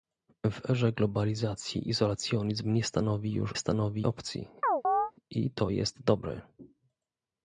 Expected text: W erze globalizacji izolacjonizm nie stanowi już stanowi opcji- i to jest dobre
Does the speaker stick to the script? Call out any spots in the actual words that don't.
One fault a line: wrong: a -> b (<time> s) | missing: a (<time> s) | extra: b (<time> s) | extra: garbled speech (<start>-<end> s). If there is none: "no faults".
no faults